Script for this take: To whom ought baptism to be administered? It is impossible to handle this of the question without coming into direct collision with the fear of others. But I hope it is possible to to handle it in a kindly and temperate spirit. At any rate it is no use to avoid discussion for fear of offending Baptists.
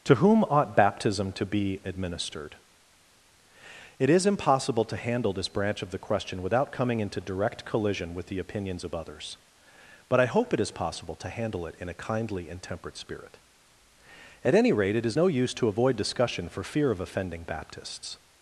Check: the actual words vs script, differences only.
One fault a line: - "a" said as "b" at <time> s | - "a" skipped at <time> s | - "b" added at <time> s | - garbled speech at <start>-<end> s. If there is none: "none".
- "branch" added at 5.5 s
- "fear" said as "opinions" at 8.4 s
- "to" skipped at 11.3 s